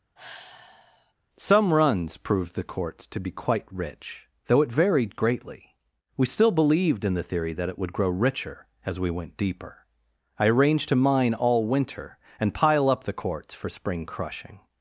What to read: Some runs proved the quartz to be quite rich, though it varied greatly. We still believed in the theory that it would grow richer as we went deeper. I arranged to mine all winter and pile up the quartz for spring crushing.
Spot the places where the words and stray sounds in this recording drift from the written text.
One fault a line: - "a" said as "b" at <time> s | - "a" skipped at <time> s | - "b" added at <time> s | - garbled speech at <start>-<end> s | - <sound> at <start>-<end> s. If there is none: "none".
- sigh at 0.2-1.1 s